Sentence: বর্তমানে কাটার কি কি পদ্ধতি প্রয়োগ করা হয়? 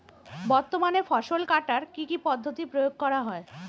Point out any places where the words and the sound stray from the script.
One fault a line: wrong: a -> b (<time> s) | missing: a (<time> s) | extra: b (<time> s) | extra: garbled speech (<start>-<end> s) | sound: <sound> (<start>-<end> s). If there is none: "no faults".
extra: ফসল (1.0 s)